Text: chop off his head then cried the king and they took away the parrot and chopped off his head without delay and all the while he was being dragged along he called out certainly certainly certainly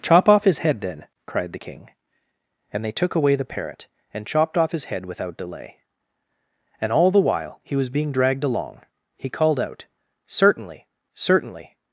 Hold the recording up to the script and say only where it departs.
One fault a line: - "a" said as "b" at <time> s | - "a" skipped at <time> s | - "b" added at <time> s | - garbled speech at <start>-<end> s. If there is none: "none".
- "certainly" skipped at 11.7 s